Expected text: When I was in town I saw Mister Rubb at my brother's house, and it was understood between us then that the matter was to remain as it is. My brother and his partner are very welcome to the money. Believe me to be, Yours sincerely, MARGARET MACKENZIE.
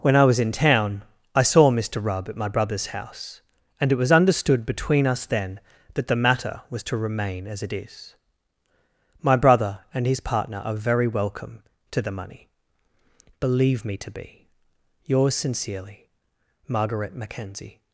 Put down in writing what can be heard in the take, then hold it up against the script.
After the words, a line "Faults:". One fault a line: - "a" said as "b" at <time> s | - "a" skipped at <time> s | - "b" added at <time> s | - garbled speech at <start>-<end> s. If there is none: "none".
When I was in town I saw Mister Rubb at my brother's house, and it was understood between us then that the matter was to remain as it is. My brother and his partner are very welcome to the money. Believe me to be, Yours sincerely, MARGARET MACKENZIE.
Faults:
none